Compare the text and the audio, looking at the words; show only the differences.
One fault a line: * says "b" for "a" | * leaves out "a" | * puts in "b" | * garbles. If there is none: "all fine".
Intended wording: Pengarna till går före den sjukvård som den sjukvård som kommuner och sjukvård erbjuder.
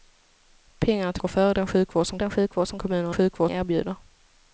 all fine